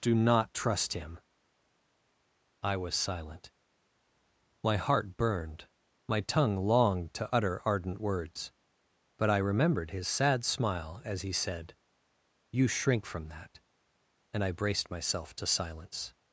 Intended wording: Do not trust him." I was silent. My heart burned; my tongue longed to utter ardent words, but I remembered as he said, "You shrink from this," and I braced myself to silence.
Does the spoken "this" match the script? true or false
false